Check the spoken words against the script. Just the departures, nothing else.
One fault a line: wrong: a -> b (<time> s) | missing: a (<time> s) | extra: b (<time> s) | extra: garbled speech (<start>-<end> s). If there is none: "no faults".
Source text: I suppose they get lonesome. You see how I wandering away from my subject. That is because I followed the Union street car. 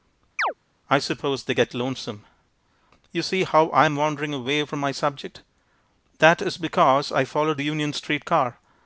extra: am (3.8 s)